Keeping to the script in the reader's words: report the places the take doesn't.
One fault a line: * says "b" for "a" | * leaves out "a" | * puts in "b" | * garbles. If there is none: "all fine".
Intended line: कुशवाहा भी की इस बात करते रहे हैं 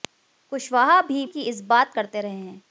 all fine